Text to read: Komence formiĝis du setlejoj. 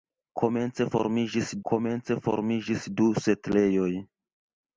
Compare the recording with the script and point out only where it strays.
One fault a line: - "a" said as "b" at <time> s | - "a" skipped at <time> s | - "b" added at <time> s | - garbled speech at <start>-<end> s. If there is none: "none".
- "komence formiĝis" added at 1.7 s